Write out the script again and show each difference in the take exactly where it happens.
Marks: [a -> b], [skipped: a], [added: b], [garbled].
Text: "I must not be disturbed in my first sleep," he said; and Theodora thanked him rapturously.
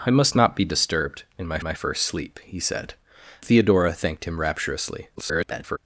"I must not be disturbed in my [added: my] first sleep," he said; [skipped: and] Theodora thanked him rapturously. [garbled]